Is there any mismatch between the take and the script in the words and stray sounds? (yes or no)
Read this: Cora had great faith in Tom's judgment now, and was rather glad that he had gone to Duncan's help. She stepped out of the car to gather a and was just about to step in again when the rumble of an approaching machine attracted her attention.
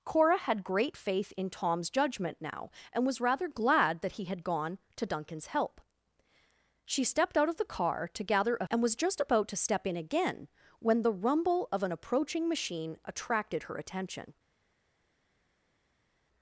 no